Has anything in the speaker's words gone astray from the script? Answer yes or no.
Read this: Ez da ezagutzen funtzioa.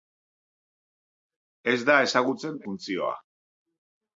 no